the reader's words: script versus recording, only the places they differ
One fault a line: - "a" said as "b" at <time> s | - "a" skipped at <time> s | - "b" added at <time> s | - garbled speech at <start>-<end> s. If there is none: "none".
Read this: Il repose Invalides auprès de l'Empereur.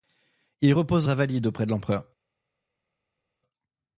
none